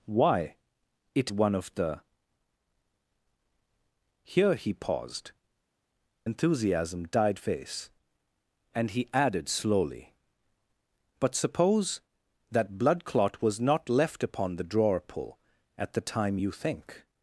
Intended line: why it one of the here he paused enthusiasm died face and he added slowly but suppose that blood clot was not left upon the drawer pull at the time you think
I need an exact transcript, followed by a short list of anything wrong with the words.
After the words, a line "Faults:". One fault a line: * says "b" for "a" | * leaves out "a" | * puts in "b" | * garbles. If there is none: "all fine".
why it one of the here he paused enthusiasm died face and he added slowly but suppose that blood clot was not left upon the drawer pull at the time you think
Faults:
all fine